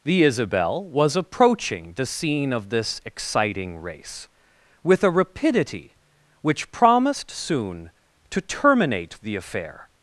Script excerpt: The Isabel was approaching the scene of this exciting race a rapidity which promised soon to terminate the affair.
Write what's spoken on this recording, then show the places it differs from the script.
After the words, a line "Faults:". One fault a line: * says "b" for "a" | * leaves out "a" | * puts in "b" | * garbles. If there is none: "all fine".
The Isabel was approaching the scene of this exciting race with a rapidity which promised soon to terminate the affair.
Faults:
* puts in "with"